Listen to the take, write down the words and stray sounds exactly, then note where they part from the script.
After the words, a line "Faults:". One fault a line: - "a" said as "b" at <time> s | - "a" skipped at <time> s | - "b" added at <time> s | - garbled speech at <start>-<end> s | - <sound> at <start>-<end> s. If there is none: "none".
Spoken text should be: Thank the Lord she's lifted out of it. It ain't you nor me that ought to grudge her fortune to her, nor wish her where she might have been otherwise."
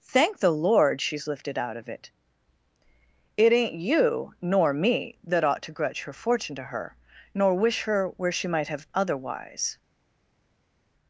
Thank the Lord she's lifted out of it. It ain't you nor me that ought to grudge her fortune to her, nor wish her where she might have otherwise."
Faults:
- "been" skipped at 8.9 s